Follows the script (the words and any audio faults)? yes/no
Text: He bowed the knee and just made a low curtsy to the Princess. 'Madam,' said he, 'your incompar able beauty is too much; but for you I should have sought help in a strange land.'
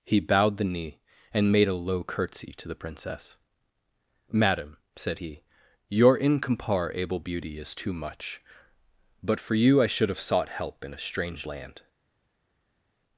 no